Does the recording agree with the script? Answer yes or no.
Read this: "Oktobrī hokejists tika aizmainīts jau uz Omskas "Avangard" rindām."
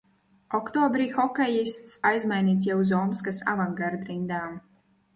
no